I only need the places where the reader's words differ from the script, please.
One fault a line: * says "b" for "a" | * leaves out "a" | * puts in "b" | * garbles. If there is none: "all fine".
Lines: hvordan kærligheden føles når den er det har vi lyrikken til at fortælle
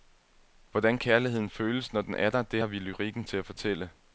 * puts in "der"